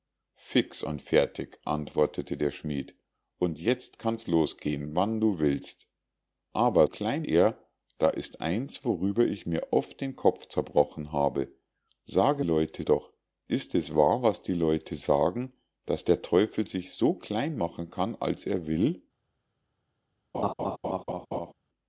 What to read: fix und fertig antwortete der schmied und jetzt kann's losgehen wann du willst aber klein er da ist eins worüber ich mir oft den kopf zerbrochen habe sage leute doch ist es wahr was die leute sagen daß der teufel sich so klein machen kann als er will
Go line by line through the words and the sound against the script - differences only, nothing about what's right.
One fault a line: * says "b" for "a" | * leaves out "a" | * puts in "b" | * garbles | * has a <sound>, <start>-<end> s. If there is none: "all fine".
* has a laugh, 20.3-21.5 s